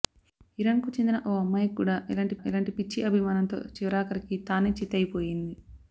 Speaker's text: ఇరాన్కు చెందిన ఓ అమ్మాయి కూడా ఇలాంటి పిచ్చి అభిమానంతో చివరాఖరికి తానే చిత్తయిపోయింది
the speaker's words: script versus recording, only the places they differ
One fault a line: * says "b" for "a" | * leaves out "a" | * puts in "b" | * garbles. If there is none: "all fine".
* puts in "ఇలాంటి"